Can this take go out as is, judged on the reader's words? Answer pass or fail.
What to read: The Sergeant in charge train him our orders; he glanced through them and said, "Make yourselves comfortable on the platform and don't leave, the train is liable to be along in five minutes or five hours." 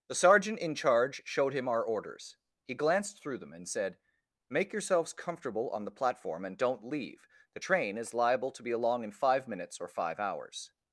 fail